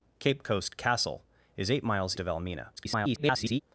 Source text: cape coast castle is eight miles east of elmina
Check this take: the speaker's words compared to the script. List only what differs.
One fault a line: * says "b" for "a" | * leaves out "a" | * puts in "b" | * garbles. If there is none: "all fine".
* leaves out "east"
* garbles